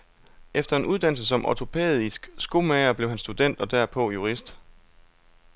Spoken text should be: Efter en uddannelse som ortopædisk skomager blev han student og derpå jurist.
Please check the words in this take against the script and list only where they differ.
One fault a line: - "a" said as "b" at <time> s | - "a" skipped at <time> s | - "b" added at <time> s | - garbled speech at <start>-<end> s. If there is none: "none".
none